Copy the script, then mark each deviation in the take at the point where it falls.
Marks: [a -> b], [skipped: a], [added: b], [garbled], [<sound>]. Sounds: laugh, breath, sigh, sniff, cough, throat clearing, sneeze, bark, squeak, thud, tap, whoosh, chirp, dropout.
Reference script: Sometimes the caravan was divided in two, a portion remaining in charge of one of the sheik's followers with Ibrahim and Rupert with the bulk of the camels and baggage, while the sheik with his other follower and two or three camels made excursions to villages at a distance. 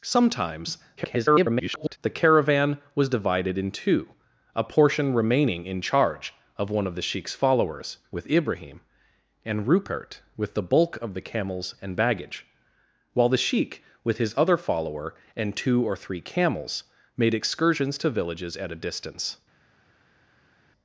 Sometimes [garbled] the caravan was divided in two, a portion remaining in charge of one of the sheik's followers with Ibrahim and Rupert with the bulk of the camels and baggage, while the sheik with his other follower and two or three camels made excursions to villages at a distance.